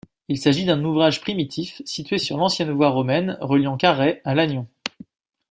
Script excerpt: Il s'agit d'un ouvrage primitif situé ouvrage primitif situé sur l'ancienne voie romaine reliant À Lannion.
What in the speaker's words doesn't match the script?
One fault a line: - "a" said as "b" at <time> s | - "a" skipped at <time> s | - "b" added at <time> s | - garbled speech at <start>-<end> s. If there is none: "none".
- "ouvrage primitif situé" skipped at 2.2 s
- "Carhaix" added at 3.7 s